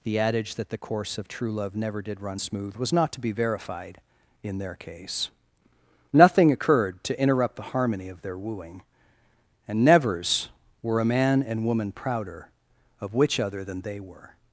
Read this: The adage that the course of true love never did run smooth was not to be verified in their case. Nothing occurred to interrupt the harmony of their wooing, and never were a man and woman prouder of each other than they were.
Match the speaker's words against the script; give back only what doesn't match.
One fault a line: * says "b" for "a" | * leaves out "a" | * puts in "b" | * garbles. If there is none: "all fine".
* says "nevers" for "never"
* says "which" for "each"